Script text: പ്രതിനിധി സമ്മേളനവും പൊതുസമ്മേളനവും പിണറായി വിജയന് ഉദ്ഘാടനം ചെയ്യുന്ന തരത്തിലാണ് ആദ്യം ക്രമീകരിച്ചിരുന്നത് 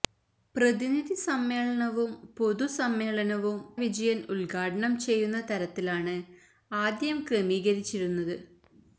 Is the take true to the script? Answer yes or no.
no